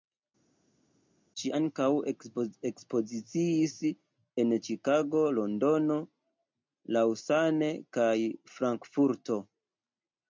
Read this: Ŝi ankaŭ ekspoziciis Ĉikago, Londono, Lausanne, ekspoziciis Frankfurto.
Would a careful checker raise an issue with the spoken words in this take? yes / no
yes